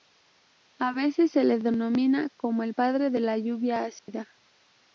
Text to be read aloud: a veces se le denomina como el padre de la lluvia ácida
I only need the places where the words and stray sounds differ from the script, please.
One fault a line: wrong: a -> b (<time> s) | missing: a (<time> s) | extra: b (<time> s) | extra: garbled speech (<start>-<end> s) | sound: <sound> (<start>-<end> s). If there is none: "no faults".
sound: dropout (4.0-4.1 s)